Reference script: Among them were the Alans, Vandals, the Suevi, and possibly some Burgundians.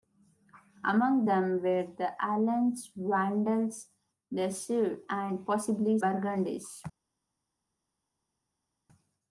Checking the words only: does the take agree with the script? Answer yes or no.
no